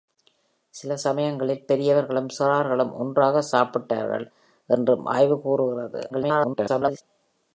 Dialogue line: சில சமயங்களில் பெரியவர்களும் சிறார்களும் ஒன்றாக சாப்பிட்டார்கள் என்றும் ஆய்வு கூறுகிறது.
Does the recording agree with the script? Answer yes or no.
no